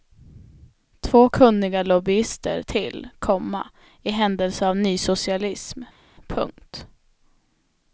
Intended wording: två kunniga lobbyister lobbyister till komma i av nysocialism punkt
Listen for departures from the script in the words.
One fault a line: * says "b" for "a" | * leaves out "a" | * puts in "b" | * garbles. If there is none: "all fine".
* leaves out "lobbyister"
* puts in "händelse"